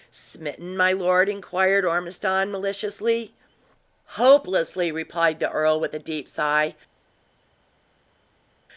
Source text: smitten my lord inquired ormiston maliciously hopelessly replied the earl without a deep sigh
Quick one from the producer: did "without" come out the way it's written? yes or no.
no